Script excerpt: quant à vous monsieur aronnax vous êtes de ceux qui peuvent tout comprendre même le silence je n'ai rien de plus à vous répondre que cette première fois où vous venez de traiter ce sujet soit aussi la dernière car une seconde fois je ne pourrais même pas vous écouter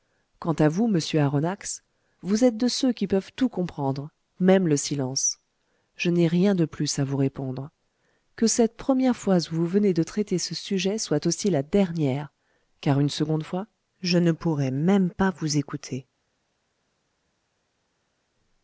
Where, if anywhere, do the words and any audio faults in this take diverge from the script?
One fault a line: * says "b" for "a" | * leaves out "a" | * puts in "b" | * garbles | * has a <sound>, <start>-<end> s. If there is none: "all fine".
all fine